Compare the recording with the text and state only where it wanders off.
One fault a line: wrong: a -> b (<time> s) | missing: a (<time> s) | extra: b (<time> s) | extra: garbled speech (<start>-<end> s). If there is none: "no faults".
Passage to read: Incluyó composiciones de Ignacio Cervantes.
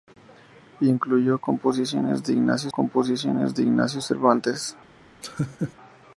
extra: composiciones de Ignacio (2.7 s)